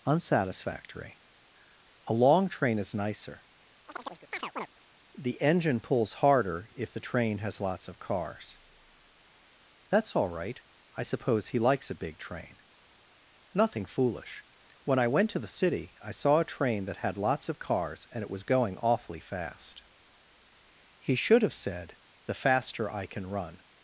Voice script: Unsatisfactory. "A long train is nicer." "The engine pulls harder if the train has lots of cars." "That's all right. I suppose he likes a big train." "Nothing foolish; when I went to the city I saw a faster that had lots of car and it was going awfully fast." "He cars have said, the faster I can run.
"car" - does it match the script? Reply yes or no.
no